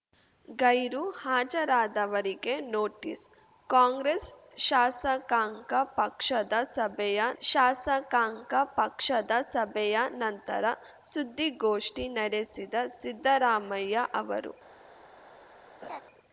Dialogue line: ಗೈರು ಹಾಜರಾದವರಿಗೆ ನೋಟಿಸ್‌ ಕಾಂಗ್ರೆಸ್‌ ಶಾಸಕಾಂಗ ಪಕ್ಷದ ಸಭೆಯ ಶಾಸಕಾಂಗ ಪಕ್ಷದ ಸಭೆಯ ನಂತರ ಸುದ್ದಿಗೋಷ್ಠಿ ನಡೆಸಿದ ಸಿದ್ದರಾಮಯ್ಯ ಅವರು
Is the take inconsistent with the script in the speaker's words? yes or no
no